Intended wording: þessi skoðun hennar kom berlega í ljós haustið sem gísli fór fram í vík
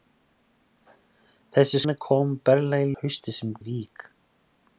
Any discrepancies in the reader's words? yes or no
yes